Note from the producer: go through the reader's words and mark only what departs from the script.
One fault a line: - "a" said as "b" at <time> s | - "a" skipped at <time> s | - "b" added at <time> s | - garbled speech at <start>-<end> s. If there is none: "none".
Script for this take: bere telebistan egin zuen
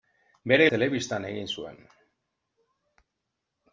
none